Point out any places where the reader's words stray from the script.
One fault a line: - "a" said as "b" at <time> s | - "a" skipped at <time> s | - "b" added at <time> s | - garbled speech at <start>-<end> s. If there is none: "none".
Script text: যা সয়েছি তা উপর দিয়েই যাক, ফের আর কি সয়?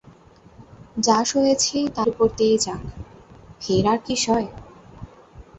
none